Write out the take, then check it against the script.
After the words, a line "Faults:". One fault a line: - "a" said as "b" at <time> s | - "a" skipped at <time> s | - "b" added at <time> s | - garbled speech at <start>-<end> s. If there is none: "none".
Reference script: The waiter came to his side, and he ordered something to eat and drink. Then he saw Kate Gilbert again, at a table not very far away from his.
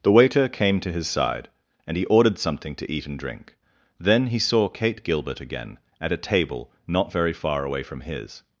The waiter came to his side, and he ordered something to eat and drink. Then he saw Kate Gilbert again, at a table not very far away from his.
Faults:
none